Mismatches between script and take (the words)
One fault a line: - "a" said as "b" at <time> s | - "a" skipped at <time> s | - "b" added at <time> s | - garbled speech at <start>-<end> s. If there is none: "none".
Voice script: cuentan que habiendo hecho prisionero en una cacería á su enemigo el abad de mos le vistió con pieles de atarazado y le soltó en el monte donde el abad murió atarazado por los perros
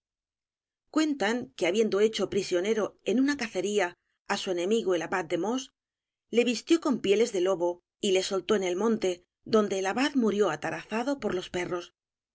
- "atarazado" said as "lobo" at 7.4 s